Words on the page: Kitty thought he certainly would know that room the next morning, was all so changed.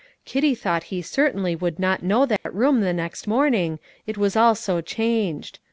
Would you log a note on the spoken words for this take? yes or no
yes